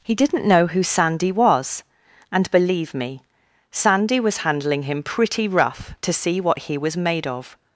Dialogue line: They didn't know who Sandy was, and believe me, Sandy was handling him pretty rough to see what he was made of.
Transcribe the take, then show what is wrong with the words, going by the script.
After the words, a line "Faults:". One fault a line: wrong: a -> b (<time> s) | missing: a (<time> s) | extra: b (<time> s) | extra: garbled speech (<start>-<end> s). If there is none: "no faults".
He didn't know who Sandy was, and believe me, Sandy was handling him pretty rough to see what he was made of.
Faults:
wrong: They -> He (0.0 s)